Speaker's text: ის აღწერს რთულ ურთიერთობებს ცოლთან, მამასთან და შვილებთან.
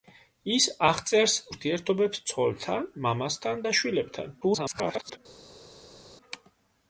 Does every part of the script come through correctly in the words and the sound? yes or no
no